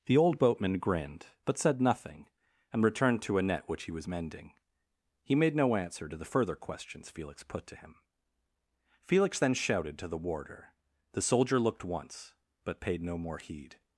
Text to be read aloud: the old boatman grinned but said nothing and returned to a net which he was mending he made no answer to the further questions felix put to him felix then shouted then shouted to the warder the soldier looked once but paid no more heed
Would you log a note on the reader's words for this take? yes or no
yes